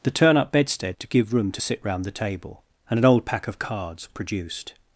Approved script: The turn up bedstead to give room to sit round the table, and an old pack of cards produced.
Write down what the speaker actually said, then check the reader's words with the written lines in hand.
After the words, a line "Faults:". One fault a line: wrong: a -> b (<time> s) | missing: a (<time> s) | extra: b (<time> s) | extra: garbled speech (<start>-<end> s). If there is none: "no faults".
The turn up bedstead to give room to sit round the table, and an old pack of cards produced.
Faults:
no faults